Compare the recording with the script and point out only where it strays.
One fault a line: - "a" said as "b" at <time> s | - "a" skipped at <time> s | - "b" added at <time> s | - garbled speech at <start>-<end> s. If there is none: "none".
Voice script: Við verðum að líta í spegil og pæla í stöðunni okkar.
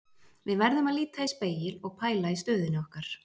none